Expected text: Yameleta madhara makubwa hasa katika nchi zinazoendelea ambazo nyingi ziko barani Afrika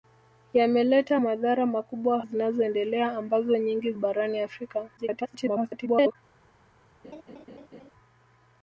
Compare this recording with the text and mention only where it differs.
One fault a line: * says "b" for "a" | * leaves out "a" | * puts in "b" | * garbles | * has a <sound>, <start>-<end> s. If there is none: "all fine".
* leaves out "hasa katika nchi"
* leaves out "ziko"
* garbles
* has a laugh, 7.0-7.9 s